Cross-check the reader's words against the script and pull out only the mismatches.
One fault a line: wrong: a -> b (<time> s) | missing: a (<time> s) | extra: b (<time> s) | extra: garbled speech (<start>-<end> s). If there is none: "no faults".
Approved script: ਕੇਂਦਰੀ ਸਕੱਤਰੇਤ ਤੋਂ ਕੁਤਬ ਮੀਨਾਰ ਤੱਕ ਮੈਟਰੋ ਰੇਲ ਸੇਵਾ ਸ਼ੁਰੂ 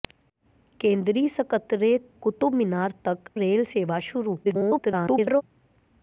missing: ਤੋਂ (2.1 s)
missing: ਮੈਟਰੋ (3.3 s)
extra: garbled speech (4.4-5.4 s)